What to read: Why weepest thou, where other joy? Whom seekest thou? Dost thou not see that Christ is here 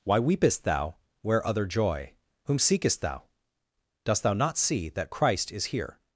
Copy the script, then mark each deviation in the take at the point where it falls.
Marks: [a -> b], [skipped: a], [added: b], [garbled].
Why weepest thou, where other joy? Whom seekest thou? Dost thou not see that Christ is here